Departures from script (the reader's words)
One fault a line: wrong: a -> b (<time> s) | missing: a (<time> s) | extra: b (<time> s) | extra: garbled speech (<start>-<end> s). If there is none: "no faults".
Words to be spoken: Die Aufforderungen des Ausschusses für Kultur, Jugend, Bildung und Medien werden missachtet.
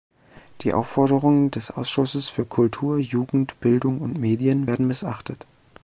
no faults